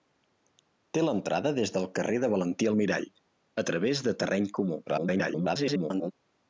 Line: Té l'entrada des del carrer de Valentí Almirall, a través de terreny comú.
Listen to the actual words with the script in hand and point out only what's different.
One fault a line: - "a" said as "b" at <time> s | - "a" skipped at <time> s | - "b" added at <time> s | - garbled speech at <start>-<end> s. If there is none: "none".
- garbled speech at 4.9-6.1 s